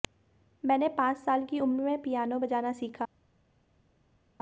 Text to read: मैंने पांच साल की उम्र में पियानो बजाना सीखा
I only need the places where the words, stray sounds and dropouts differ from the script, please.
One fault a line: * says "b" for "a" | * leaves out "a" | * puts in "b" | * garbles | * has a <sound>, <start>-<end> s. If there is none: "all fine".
all fine